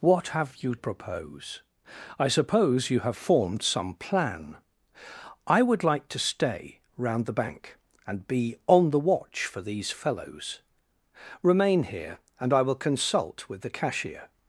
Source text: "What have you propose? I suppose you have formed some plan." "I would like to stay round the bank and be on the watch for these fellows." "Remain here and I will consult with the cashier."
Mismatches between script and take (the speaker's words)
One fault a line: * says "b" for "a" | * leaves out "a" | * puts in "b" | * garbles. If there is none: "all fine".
all fine